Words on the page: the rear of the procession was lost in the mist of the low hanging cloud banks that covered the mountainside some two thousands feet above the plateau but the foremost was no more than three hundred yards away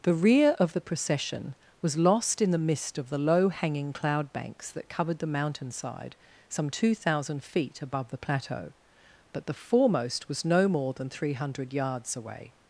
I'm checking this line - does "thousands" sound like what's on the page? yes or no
no